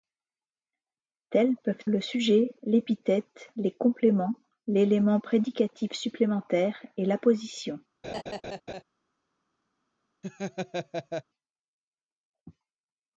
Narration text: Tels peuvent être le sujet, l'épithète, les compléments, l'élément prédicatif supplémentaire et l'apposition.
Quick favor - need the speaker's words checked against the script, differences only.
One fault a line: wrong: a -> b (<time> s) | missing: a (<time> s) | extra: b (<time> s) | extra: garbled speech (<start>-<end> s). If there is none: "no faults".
missing: être (1.9 s)